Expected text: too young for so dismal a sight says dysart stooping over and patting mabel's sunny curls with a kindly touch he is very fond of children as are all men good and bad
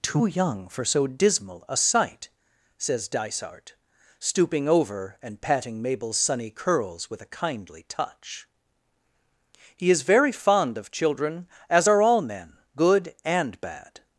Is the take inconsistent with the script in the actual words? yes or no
no